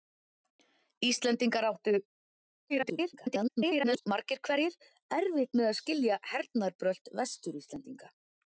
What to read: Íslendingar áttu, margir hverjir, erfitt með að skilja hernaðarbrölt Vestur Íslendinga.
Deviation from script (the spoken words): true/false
true